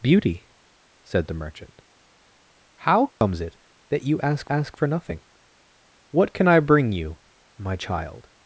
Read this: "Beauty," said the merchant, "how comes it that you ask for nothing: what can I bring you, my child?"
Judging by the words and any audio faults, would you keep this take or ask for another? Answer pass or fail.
fail